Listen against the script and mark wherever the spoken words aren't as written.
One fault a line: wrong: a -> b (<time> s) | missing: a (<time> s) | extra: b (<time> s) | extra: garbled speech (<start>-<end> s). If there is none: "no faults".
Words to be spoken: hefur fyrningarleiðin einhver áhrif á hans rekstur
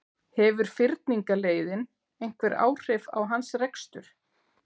no faults